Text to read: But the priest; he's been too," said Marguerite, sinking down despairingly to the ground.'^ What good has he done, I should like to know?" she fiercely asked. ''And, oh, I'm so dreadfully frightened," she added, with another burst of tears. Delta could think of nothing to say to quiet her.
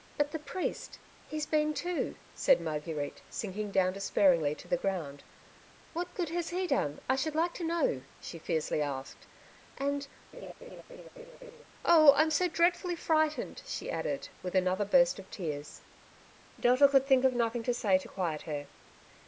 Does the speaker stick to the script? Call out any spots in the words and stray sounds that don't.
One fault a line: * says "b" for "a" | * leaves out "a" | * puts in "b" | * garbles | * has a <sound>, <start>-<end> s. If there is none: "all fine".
* has a laugh, 10.3-11.6 s